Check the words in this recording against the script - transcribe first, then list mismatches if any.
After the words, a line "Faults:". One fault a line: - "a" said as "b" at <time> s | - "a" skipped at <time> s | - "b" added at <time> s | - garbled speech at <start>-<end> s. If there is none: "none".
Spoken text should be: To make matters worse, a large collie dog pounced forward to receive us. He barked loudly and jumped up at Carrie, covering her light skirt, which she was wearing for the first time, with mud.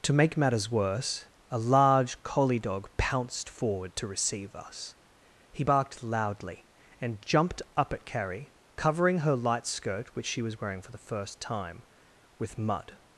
To make matters worse, a large collie dog pounced forward to receive us. He barked loudly and jumped up at Carrie, covering her light skirt, which she was wearing for the first time, with mud.
Faults:
none